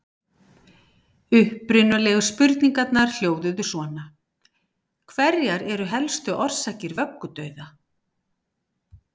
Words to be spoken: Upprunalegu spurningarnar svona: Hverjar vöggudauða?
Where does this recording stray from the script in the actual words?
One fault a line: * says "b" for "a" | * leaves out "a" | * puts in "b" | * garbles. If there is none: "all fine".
* puts in "hljóðuðu"
* puts in "eru helstu orsakir"